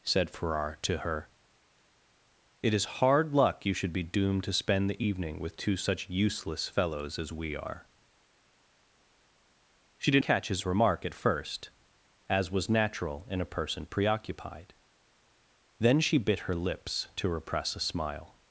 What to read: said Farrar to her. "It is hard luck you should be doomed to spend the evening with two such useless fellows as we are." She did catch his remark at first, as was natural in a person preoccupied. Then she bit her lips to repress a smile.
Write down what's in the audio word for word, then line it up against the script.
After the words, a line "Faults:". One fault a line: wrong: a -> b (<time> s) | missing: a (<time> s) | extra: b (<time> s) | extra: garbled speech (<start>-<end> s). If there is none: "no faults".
said Farrar to her. "It is hard luck you should be doomed to spend the evening with two such useless fellows as we are." She did catch his remark at first, as was natural in a person preoccupied. Then she bit her lips to repress a smile.
Faults:
no faults